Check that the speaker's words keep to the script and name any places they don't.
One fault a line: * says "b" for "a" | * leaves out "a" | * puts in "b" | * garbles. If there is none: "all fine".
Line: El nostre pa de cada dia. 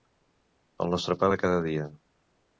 all fine